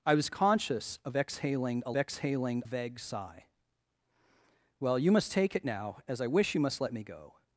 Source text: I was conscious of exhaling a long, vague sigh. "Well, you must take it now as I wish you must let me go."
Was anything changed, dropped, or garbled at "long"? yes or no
yes